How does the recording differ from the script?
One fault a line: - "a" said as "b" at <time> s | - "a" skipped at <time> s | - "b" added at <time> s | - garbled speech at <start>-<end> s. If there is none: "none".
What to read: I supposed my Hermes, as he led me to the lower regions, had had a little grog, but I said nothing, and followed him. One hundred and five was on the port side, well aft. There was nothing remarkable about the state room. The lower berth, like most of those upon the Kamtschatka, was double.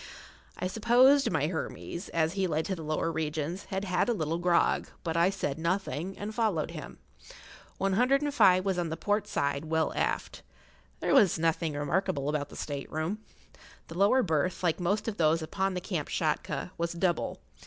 - "me" skipped at 2.7 s